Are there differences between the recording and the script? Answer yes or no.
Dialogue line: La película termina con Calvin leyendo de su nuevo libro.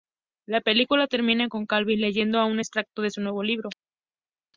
yes